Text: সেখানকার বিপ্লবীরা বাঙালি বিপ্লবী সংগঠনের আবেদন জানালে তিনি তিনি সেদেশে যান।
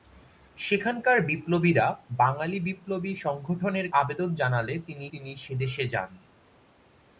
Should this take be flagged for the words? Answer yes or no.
no